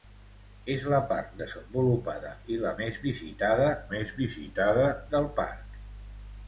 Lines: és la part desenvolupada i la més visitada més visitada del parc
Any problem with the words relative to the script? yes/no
no